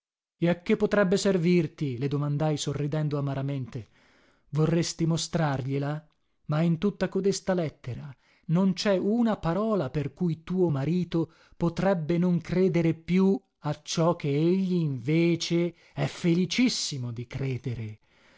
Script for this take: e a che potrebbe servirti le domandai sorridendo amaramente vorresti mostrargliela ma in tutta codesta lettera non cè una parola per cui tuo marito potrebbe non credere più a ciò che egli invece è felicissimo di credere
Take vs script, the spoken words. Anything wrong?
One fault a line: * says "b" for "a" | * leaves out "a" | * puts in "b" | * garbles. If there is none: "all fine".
all fine